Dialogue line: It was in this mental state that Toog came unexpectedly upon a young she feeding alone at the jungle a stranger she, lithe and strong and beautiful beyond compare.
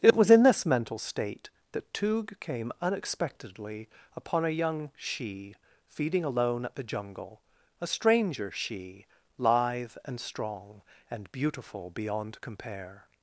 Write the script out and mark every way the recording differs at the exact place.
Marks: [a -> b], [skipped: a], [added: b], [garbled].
It was in this mental state that Toog came unexpectedly upon a young she feeding alone at the jungle a stranger she, lithe and strong and beautiful beyond compare.